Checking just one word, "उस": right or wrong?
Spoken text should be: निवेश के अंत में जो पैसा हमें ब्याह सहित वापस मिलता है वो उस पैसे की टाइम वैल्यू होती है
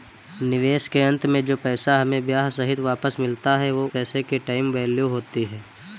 wrong